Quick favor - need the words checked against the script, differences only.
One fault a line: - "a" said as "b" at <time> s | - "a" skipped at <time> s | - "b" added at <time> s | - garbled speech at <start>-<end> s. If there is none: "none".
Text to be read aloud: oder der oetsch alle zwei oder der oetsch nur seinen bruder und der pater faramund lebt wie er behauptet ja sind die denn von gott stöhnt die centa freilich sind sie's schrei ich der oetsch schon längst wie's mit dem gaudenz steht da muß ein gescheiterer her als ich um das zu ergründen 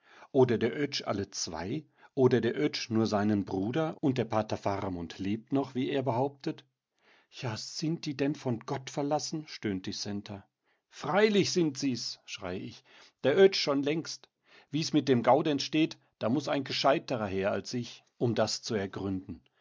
- "noch" added at 5.5 s
- "verlassen" added at 8.9 s